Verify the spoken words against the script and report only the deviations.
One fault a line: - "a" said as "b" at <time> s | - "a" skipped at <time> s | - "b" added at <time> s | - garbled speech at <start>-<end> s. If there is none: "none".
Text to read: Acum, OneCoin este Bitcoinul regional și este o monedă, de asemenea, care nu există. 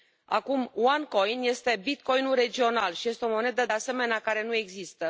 none